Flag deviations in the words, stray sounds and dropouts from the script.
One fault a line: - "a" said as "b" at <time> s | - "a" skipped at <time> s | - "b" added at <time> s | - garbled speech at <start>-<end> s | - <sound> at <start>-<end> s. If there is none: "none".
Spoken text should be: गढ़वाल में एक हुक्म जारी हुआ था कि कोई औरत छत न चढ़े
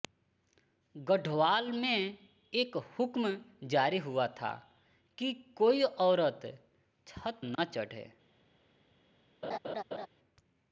- dropout at 7.5-7.6 s
- laugh at 9.4-10.1 s